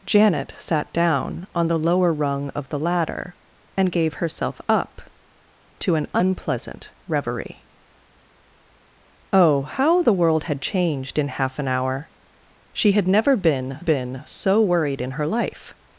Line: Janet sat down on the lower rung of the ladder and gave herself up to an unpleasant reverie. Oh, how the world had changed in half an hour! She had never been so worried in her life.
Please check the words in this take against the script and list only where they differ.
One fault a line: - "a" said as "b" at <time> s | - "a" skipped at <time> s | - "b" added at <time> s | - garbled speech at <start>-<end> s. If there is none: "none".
- "been" added at 13.8 s